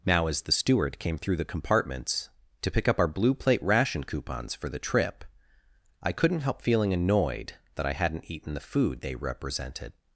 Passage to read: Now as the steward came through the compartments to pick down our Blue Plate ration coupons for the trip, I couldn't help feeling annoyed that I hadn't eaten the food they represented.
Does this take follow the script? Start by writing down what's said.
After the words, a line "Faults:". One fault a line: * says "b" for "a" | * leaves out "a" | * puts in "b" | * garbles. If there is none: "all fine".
Now as the steward came through the compartments to pick up our Blue Plate ration coupons for the trip, I couldn't help feeling annoyed that I hadn't eaten the food they represented.
Faults:
* says "up" for "down"